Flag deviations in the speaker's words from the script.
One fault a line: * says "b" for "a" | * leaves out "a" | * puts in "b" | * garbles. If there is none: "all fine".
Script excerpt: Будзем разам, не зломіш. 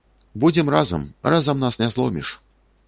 * puts in "разам нас"